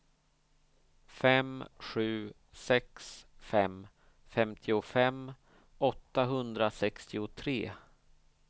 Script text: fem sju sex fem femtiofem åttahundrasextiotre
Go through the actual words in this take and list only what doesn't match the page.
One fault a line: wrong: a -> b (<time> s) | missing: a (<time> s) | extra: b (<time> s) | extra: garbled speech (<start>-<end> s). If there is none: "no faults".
no faults